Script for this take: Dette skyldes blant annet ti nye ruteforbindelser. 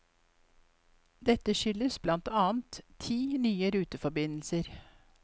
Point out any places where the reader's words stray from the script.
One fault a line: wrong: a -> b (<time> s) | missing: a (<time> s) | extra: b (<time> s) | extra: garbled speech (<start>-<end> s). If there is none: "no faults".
no faults